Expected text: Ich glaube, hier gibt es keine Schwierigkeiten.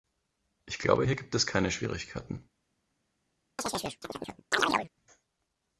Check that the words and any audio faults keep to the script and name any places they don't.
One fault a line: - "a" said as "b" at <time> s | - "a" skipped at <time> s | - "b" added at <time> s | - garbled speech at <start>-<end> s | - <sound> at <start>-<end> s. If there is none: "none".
- chirp at 3.6-4.9 s